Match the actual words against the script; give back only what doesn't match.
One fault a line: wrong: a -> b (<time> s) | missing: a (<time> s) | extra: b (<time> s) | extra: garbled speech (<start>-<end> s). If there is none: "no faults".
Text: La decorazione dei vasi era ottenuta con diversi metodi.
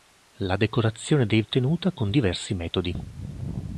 missing: vasi era (1.4 s)